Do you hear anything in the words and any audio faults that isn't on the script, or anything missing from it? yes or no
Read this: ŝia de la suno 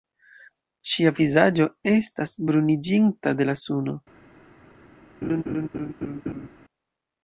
yes